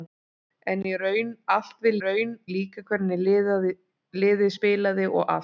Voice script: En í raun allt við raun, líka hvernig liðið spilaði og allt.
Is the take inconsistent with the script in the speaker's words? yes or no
no